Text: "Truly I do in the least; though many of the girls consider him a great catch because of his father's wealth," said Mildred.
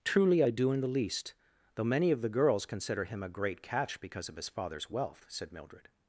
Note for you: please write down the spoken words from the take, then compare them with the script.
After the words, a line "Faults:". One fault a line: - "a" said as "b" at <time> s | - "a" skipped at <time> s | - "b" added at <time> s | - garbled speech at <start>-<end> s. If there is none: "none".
"Truly I do in the least; though many of the girls consider him a great catch because of his father's wealth," said Mildred.
Faults:
none